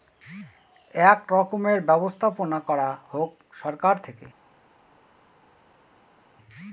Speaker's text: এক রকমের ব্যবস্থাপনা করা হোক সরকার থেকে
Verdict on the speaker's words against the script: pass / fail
pass